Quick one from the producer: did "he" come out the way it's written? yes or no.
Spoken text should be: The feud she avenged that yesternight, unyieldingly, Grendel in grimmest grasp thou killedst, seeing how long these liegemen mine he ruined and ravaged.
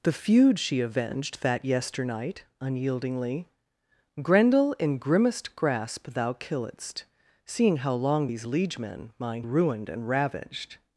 no